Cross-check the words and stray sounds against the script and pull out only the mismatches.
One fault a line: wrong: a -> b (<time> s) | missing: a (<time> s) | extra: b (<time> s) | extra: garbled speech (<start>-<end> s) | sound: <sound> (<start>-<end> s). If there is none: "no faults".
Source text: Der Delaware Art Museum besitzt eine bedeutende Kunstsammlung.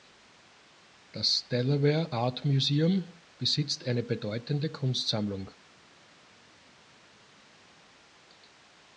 wrong: Der -> Das (1.1 s)